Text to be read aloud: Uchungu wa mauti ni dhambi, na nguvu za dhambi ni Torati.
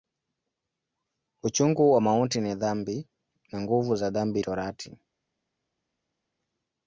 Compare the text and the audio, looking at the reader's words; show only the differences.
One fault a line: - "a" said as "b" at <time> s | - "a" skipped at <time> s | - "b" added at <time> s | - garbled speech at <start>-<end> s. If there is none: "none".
- "ni" skipped at 4.4 s